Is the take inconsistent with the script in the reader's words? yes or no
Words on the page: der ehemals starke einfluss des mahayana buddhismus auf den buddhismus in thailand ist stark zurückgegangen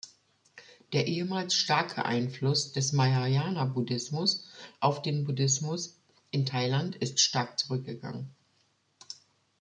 no